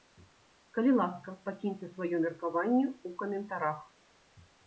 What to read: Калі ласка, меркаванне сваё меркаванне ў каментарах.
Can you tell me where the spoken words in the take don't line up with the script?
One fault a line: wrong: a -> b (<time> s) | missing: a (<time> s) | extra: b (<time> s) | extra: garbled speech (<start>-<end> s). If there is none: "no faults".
wrong: меркаванне -> пакіньце (1.5 s)